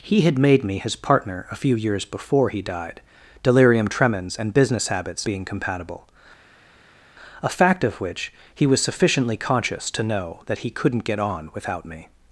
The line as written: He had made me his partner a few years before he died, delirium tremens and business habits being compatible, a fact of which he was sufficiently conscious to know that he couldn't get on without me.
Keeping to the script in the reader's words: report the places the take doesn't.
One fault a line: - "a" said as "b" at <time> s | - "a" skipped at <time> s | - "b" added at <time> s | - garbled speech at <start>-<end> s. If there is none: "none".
none